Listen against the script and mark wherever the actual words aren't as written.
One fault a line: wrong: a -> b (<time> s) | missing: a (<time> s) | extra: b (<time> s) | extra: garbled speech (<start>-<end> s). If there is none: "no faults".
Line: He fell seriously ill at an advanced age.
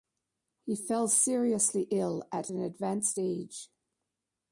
no faults